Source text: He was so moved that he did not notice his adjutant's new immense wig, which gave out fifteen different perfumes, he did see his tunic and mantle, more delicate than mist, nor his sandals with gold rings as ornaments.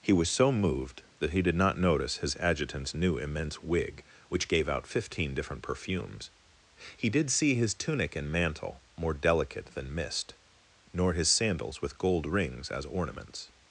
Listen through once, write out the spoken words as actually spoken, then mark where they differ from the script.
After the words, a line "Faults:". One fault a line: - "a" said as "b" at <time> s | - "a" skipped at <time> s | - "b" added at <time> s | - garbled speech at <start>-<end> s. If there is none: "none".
He was so moved that he did not notice his adjutant's new immense wig, which gave out fifteen different perfumes, he did see his tunic and mantle, more delicate than mist, nor his sandals with gold rings as ornaments.
Faults:
none